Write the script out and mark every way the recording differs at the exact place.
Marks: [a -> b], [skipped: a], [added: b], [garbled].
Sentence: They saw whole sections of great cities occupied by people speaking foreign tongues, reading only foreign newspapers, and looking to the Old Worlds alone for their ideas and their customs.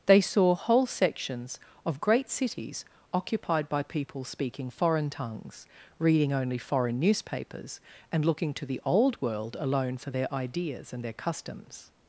They saw whole sections of great cities occupied by people speaking foreign tongues, reading only foreign newspapers, and looking to the Old [Worlds -> World] alone for their ideas and their customs.